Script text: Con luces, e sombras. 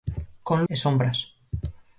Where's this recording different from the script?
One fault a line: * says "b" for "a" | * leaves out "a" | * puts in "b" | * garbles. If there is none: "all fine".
* leaves out "luces"